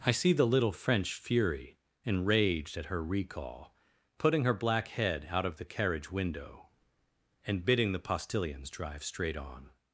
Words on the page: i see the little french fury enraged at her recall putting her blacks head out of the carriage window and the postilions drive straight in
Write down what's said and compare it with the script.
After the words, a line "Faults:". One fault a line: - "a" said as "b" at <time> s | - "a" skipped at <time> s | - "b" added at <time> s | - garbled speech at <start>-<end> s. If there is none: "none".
i see the little french fury enraged at her recall putting her black head out of the carriage window and bidding the postilions drive straight on
Faults:
- "blacks" said as "black" at 4.5 s
- "bidding" added at 7.7 s
- "in" said as "on" at 9.4 s